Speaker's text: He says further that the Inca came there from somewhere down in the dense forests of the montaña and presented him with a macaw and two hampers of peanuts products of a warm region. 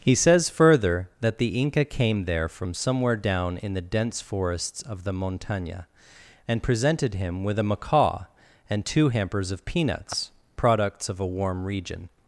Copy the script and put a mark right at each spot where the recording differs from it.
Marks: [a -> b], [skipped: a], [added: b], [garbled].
He says further that the Inca came there from somewhere down in the dense forests of the montaña and presented him with a macaw and two hampers of peanuts products of a warm region.